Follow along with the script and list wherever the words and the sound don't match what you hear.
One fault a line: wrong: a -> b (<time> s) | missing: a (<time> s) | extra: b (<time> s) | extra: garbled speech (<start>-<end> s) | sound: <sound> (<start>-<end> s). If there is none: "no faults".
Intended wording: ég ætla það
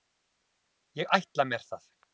extra: mér (1.5 s)